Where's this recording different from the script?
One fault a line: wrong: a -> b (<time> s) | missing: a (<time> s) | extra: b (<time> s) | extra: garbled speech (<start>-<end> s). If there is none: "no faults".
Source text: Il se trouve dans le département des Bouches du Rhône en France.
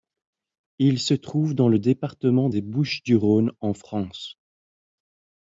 no faults